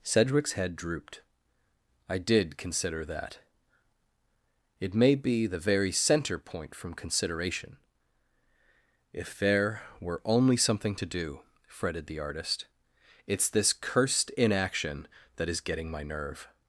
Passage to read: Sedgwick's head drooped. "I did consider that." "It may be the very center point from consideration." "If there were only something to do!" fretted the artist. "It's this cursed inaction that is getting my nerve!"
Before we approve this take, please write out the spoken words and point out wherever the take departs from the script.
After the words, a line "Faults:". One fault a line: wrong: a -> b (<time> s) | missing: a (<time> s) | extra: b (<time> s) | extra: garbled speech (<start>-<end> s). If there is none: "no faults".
Sedgwick's head drooped. "I did consider that." "It may be the very center point from consideration." "If there were only something to do!" fretted the artist. "It's this cursed inaction that is getting my nerve!"
Faults:
no faults